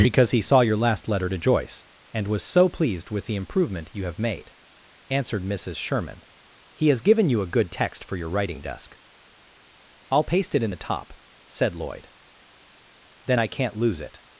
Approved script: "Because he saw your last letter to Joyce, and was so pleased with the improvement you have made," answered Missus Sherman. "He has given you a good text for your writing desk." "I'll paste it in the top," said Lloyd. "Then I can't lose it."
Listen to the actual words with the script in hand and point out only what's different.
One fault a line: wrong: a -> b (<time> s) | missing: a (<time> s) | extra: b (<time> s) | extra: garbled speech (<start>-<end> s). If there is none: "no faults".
no faults